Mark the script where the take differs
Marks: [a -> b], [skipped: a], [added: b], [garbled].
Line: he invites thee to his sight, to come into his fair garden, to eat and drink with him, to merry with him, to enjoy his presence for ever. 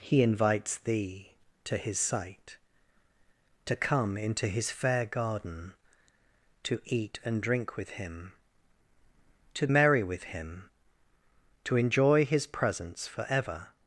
he invites thee to his sight, to come into his fair garden, to eat and drink with him, to merry with him, to enjoy his presence for ever.